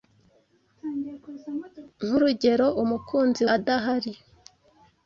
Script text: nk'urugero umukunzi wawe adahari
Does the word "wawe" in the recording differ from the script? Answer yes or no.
yes